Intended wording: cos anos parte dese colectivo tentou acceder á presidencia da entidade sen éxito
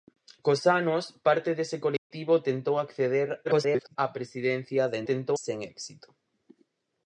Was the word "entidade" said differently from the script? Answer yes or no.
yes